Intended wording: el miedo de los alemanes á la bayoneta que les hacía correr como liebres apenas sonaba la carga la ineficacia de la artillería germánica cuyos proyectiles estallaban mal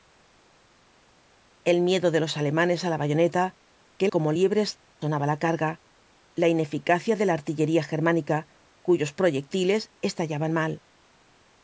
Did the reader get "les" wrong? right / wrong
wrong